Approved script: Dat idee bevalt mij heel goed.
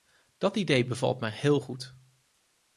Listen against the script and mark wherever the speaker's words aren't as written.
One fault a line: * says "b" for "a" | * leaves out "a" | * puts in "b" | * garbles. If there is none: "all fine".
all fine